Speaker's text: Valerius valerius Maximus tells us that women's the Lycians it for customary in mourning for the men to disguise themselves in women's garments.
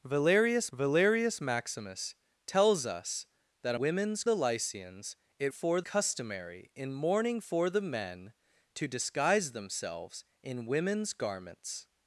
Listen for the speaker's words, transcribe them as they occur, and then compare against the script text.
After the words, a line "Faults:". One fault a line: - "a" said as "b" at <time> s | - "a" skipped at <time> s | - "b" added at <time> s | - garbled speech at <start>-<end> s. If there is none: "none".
Valerius valerius Maximus tells us that women's the Lycians it for customary in mourning for the men to disguise themselves in women's garments.
Faults:
none